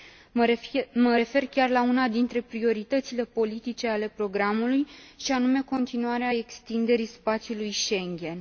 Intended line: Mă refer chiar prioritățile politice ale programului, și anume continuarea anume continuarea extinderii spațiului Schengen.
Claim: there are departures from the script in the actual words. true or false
true